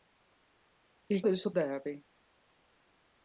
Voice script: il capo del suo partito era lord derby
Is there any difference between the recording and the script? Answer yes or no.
yes